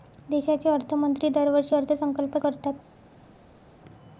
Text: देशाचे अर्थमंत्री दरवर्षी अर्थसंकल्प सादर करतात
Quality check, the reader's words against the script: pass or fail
fail